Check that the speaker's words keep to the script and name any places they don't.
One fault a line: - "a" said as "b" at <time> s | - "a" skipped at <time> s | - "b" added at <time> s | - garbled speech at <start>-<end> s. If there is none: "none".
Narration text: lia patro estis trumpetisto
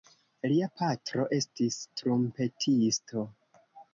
none